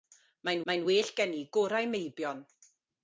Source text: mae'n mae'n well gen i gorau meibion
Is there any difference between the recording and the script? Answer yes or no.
no